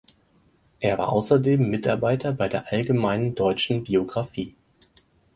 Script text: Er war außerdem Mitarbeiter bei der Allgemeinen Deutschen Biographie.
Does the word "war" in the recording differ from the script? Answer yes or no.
no